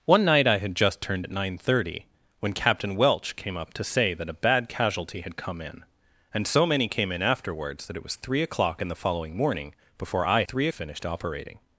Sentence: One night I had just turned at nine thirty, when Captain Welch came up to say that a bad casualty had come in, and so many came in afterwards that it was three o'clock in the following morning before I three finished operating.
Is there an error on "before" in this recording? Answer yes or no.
no